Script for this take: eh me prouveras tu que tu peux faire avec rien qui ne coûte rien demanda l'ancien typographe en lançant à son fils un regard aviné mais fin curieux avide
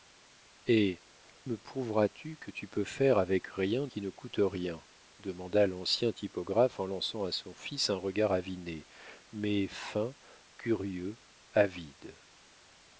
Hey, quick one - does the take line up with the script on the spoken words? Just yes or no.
yes